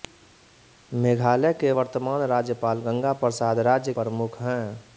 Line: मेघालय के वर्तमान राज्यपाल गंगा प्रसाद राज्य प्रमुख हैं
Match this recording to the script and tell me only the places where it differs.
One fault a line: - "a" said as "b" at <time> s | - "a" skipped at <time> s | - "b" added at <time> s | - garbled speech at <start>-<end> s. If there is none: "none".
none